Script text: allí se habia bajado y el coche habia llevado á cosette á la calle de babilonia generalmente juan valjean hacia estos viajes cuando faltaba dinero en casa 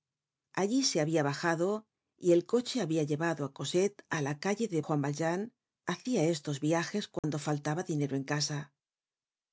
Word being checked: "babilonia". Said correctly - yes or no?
no